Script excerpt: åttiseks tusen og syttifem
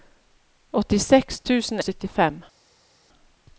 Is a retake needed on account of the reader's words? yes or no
no